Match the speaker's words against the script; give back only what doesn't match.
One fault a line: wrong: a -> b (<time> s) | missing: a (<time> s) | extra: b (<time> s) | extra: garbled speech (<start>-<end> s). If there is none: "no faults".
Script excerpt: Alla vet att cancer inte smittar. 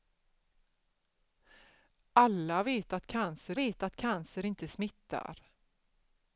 extra: vet att cancer (3.5 s)